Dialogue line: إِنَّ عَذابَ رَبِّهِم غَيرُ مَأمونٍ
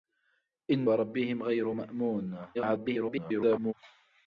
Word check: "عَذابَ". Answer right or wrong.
wrong